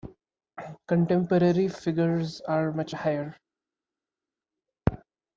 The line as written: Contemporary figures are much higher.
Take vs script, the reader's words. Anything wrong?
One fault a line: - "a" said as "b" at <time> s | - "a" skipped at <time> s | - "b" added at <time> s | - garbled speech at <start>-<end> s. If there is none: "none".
none